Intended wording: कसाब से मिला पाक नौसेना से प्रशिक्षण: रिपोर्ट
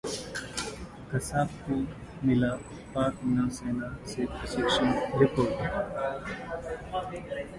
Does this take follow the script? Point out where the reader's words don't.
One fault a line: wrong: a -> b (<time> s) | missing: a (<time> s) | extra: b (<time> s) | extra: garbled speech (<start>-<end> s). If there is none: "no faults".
wrong: से -> को (1.6 s)